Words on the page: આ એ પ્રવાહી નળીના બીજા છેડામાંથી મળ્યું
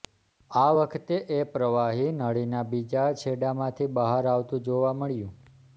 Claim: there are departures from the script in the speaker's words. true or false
true